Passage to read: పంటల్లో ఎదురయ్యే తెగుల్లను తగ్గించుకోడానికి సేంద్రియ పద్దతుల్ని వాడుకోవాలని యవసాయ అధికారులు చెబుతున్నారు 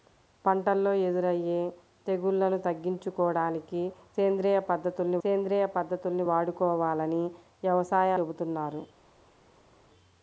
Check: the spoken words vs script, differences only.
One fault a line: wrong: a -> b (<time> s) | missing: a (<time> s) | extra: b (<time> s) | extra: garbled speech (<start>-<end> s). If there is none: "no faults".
extra: సేంద్రియ పద్దతుల్ని (5.2 s)
missing: అధికారులు (8.1 s)